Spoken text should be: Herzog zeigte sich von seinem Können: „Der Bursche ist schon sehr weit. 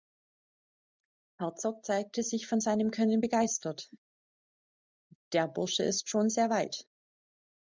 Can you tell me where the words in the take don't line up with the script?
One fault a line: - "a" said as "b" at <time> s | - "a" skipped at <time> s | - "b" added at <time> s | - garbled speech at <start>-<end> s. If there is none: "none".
- "begeistert" added at 3.2 s